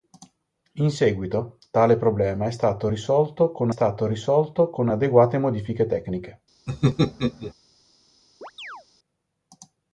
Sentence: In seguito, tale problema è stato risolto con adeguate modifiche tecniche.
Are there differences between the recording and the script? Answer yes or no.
yes